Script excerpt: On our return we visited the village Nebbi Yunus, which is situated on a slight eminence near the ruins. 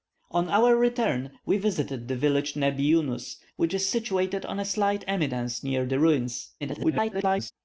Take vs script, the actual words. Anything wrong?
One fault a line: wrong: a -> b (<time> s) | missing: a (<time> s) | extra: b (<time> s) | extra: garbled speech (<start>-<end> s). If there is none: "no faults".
extra: garbled speech (6.6-7.5 s)